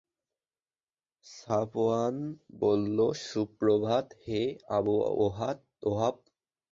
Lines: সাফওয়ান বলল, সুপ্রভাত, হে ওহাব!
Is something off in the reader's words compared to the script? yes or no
yes